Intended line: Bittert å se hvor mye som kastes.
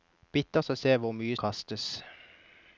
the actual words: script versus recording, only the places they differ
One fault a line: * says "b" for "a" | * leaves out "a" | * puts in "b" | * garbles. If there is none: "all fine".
* leaves out "som"